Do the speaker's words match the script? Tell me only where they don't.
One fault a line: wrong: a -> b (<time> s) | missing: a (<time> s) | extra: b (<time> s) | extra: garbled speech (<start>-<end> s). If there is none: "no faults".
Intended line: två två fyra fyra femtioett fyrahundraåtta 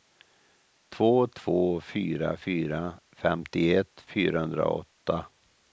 no faults